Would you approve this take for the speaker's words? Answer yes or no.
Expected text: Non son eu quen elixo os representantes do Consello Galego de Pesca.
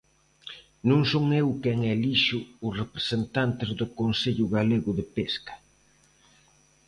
yes